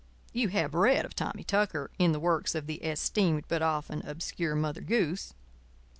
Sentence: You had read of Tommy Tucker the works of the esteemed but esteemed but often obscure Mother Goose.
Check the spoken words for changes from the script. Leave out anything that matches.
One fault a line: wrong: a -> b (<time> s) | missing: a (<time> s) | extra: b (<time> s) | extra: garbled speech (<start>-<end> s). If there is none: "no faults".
wrong: had -> have (0.5 s)
extra: in (2.0 s)
missing: esteemed but (3.6 s)